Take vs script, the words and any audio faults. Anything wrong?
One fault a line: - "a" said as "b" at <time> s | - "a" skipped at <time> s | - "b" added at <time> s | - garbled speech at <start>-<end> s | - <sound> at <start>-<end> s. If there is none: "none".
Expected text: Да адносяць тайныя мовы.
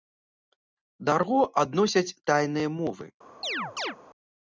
- "арго" added at 1.2 s
- chirp at 3.4-4.0 s